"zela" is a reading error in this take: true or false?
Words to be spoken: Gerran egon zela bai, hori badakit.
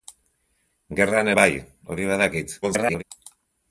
true